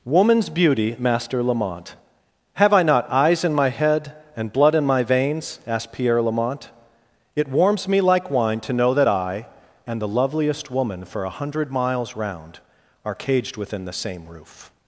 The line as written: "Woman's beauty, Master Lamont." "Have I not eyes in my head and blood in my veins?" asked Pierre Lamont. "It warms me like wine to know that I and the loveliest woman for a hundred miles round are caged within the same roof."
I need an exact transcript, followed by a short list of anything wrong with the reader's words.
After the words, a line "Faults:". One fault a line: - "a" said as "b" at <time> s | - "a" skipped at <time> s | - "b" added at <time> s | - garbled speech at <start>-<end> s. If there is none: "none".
"Woman's beauty, Master Lamont." "Have I not eyes in my head and blood in my veins?" asked Pierre Lamont. "It warms me like wine to know that I and the loveliest woman for a hundred miles round are caged within the same roof."
Faults:
none